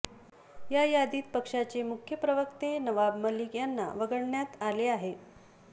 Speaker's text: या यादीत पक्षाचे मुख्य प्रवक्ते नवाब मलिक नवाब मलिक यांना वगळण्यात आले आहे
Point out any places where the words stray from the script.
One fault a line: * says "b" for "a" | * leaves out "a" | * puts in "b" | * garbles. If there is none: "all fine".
* leaves out "नवाब मलिक"